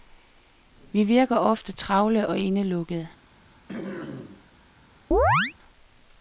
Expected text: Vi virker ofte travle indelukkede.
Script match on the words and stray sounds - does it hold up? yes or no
no